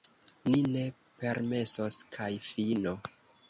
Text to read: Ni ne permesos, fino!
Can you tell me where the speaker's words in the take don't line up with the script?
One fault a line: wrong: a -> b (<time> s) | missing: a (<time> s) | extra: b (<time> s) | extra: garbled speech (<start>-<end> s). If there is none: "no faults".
extra: kaj (2.2 s)